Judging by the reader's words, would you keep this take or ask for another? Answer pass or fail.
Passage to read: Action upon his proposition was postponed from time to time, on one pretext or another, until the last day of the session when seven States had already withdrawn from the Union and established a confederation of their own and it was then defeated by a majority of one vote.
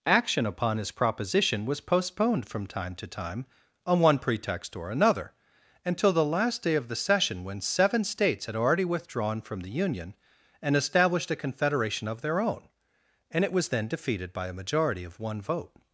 pass